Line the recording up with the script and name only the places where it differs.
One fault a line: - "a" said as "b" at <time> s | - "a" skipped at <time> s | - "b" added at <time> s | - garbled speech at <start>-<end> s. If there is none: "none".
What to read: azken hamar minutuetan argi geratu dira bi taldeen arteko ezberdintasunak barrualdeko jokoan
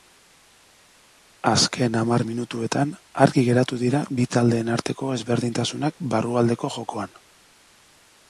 none